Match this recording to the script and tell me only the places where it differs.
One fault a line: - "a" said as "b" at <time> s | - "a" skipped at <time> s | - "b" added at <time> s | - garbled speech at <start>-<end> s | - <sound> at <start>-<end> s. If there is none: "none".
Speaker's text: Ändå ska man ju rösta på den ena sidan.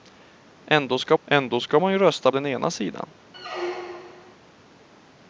- "ändå ska" added at 1.2 s
- "på" skipped at 2.3 s
- squeak at 3.3-4.3 s